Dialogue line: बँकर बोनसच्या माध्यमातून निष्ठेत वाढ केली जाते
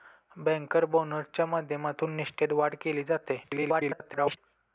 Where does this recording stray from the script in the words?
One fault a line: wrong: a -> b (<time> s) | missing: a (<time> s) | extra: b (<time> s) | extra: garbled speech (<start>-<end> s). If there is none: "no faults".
extra: garbled speech (3.4-4.4 s)